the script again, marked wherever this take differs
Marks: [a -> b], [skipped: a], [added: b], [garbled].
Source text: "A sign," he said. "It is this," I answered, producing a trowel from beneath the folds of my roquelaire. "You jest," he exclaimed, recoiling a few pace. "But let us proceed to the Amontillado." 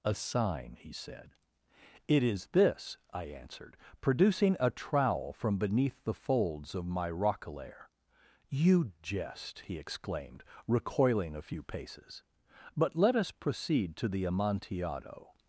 "A sign," he said. "It is this," I answered, producing a trowel from beneath the folds of my roquelaire. "You jest," he exclaimed, recoiling a few [pace. -> paces] "But let us proceed to the Amontillado."